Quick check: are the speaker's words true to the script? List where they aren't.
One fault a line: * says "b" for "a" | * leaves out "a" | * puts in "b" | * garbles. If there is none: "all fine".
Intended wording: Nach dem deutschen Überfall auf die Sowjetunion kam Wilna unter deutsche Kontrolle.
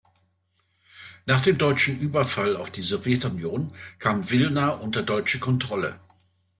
all fine